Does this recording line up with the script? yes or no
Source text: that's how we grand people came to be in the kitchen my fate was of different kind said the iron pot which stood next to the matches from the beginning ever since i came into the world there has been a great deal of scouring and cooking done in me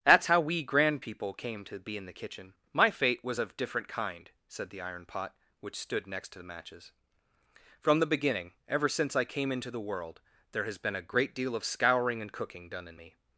yes